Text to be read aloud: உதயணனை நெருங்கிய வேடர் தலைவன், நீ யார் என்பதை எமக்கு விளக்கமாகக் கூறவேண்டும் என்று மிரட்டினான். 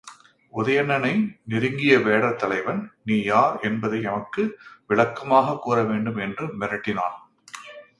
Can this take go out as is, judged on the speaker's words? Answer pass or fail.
pass